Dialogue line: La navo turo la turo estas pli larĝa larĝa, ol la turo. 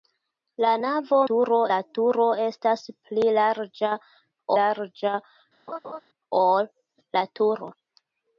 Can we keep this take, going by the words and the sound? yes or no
no